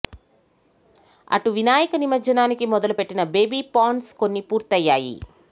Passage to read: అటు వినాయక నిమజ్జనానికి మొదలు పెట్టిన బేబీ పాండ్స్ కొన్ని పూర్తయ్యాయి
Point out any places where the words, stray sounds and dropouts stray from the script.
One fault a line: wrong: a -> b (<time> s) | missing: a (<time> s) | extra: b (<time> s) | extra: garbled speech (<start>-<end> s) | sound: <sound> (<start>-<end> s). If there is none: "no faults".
no faults